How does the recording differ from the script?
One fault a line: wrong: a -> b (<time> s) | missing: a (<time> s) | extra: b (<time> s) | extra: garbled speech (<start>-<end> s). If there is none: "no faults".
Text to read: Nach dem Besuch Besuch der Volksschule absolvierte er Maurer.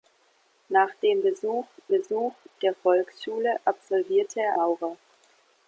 no faults